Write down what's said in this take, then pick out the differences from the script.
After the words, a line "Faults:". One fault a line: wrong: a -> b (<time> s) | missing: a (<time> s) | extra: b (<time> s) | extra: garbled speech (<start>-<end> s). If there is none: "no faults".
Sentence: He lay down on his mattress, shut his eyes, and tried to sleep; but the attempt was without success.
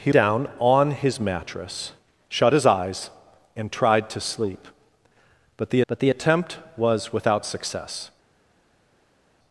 He down on his mattress, shut his eyes, and tried to sleep; but the but the attempt was without success.
Faults:
missing: lay (0.1 s)
extra: but the (5.9 s)